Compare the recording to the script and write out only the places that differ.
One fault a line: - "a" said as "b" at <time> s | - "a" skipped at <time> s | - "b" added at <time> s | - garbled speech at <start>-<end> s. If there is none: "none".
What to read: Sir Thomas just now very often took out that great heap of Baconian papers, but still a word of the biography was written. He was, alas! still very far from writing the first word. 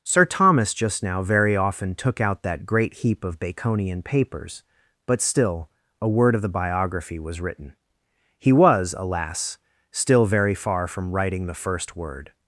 none